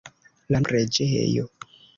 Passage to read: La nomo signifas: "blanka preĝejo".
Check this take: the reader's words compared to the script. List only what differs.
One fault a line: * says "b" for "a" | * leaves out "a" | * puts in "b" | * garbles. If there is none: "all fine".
* leaves out "nomo signifas blanka"